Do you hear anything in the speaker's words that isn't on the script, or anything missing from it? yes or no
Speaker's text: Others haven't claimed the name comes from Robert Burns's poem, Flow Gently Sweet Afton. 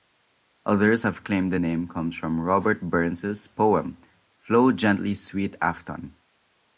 yes